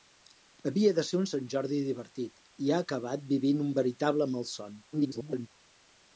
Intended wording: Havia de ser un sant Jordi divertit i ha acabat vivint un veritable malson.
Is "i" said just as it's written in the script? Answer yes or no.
yes